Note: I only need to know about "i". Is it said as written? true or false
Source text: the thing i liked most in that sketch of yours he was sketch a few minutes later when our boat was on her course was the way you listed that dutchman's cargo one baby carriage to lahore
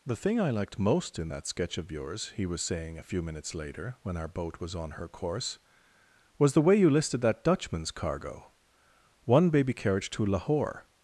true